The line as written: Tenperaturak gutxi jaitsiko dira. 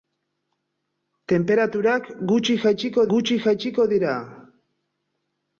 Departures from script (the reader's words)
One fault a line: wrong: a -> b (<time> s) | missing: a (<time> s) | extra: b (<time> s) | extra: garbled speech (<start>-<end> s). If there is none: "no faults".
extra: gutxi jaitsiko (3.1 s)